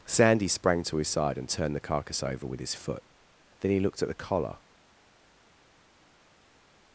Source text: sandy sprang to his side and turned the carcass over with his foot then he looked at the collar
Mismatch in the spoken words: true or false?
false